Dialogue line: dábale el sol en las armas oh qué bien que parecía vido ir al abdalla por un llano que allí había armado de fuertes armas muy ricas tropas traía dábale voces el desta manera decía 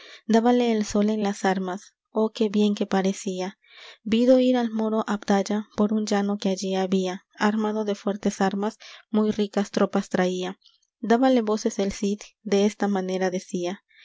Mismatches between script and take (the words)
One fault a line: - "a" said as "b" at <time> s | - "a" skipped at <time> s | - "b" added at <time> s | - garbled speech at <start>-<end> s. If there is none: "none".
- "moro" added at 4.7 s
- "cid" added at 11.9 s